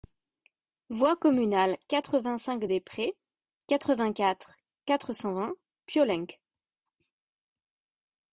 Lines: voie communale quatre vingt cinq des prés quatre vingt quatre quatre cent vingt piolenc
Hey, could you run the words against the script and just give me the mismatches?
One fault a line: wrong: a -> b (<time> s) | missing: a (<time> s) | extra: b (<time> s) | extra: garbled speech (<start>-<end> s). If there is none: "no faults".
no faults